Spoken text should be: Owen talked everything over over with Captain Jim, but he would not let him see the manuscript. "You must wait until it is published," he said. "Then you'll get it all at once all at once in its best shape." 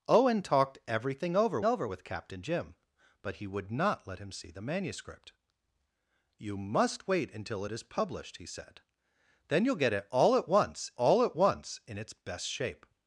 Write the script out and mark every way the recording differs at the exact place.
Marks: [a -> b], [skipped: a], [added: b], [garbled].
Owen talked everything over over with Captain Jim, but he would not let him see the manuscript. "You must wait until it is published," he said. "Then you'll get it all at once all at once in its best shape."